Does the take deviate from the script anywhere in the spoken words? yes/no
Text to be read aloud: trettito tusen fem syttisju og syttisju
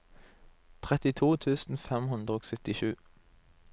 yes